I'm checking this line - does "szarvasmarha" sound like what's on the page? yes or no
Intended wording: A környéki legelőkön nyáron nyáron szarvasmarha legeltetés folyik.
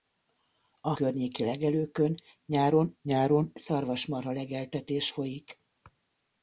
yes